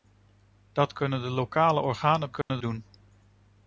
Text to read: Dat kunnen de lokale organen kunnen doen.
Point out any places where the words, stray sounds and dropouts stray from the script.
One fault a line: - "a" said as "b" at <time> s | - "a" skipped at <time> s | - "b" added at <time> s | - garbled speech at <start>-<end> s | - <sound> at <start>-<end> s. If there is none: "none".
- dropout at 2.4-2.5 s